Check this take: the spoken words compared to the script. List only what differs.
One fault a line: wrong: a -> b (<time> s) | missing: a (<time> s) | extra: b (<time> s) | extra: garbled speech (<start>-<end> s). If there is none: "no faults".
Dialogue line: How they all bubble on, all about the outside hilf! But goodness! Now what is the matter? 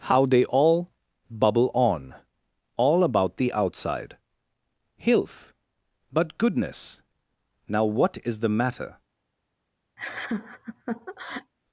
no faults